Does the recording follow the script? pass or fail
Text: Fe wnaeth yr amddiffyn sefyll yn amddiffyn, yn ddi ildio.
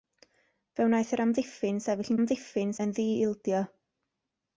pass